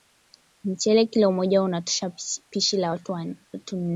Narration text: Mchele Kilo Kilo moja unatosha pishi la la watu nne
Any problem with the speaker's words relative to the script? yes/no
yes